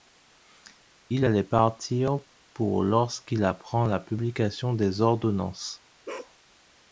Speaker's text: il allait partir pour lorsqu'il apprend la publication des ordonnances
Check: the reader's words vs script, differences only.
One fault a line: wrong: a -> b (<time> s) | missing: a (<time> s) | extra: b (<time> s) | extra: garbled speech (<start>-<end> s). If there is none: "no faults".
no faults